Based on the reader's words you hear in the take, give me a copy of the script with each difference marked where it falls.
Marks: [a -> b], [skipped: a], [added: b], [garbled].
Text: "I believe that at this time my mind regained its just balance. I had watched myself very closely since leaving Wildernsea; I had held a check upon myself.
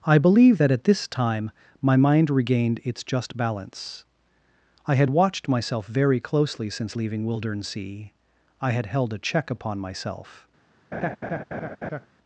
"I believe that at this time my mind regained its just balance. I had watched myself very closely since leaving Wildernsea; I had held a check upon myself.